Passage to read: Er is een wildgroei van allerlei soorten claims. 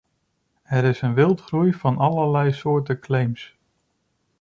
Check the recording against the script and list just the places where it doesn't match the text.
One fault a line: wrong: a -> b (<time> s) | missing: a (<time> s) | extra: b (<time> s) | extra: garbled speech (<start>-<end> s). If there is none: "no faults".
no faults